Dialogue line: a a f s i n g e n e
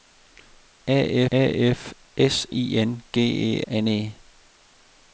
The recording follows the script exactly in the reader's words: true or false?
true